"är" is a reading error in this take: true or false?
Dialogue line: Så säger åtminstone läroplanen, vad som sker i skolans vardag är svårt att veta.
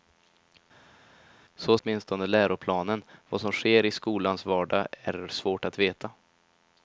false